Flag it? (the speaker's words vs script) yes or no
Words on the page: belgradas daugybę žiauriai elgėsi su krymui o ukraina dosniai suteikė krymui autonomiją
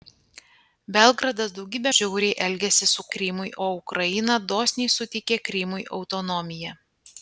no